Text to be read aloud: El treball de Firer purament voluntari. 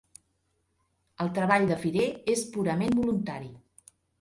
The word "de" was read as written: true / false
true